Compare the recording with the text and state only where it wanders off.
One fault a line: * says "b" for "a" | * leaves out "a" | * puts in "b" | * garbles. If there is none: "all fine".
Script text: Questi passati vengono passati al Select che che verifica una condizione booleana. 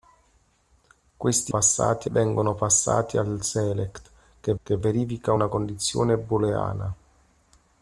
all fine